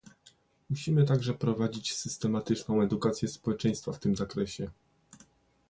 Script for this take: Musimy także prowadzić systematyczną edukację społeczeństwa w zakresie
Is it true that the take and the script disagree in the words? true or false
true